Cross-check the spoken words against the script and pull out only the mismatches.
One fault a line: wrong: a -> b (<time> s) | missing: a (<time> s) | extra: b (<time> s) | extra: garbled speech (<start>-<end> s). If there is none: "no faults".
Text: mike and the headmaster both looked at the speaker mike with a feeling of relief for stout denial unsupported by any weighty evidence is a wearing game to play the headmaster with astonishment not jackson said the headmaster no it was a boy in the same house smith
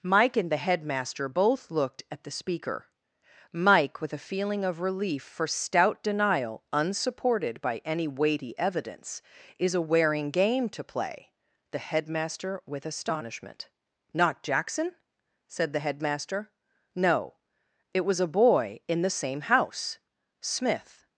no faults